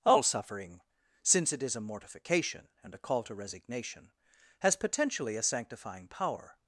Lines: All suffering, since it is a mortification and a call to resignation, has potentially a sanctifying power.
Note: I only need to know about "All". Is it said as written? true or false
true